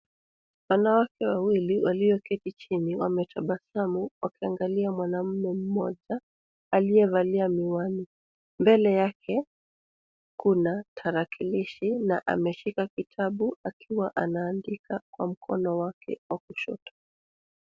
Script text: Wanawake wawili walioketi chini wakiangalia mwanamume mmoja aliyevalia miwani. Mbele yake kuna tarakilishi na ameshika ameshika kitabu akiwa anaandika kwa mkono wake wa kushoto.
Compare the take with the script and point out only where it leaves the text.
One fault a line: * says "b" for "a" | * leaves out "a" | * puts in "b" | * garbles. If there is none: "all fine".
* puts in "wametabasamu"
* leaves out "ameshika"